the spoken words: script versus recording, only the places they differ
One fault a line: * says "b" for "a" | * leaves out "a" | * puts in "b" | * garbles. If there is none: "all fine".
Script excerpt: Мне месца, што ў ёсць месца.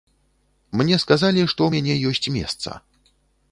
* says "сказалі" for "месца"
* puts in "мяне"